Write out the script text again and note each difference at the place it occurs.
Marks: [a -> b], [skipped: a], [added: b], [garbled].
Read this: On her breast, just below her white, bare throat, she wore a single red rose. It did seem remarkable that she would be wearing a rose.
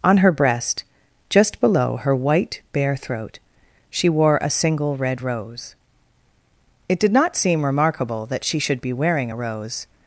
On her breast, just below her white, bare throat, she wore a single red rose. It did [added: not] seem remarkable that she [would -> should] be wearing a rose.